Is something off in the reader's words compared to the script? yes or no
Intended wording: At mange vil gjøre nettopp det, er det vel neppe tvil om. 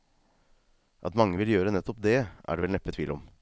no